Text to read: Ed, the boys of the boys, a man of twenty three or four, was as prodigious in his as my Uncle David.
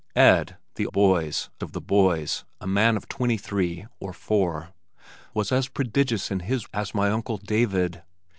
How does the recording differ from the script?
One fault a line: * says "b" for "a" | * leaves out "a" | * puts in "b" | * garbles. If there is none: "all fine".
all fine